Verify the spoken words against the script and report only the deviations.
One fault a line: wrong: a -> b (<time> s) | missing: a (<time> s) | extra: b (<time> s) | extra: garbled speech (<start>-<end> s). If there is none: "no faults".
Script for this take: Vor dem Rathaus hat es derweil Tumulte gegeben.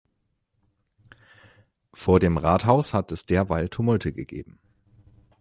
no faults